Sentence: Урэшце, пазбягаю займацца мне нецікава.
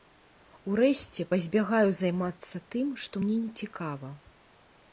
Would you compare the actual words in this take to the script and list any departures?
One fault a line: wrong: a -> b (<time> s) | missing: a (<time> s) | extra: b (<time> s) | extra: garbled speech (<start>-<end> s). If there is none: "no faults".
extra: тым што (2.7 s)